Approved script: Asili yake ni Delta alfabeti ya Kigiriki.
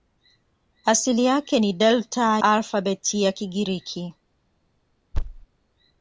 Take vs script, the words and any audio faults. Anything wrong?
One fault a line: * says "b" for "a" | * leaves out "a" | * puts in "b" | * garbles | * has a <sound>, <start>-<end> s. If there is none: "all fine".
* has a thud, 5.1-5.5 s